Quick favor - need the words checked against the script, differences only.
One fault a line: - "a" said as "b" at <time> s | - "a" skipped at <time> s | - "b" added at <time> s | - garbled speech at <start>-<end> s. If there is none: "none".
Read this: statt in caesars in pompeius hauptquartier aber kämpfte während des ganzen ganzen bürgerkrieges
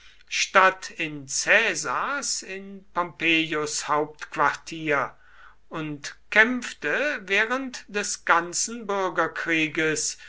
- "aber" said as "und" at 5.7 s
- "ganzen" skipped at 8.9 s